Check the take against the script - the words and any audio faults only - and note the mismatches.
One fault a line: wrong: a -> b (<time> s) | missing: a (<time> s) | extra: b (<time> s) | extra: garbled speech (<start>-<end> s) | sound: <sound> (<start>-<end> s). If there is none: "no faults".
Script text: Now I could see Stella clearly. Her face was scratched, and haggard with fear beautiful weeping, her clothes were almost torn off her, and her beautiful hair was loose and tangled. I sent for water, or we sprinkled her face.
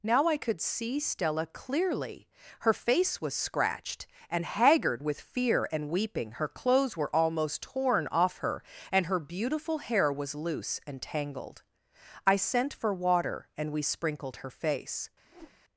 wrong: beautiful -> and (5.7 s)
wrong: or -> and (13.6 s)
sound: whoosh (15.2-15.6 s)